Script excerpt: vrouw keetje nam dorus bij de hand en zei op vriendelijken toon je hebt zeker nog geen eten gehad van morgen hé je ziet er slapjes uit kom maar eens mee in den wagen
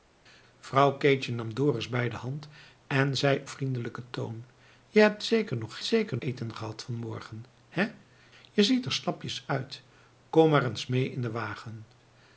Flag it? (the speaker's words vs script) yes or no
yes